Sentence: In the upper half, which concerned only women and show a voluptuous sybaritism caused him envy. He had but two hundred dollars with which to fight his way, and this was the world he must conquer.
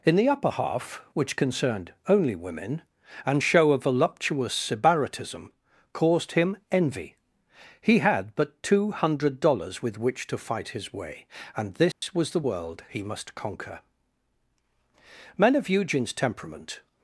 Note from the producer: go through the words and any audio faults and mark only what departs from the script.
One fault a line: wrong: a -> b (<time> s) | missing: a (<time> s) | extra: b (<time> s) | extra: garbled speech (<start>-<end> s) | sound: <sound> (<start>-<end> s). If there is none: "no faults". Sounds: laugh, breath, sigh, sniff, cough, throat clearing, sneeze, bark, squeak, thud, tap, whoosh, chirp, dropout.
sound: dropout (11.9-12.0 s)
extra: Men of Eugene's temperament (15.4 s)